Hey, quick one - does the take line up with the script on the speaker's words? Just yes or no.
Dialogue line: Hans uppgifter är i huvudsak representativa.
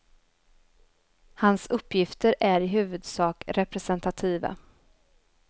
yes